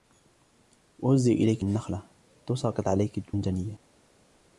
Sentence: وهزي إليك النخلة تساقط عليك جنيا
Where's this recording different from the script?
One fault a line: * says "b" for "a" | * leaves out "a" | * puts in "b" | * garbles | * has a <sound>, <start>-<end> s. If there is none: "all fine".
all fine